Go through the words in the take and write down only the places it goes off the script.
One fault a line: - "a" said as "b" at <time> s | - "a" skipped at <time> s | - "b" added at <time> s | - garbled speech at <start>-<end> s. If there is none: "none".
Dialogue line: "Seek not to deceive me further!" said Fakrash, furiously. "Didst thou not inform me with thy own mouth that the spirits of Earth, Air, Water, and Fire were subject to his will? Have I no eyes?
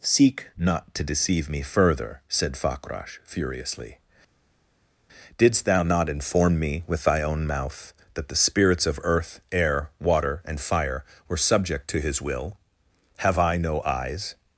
none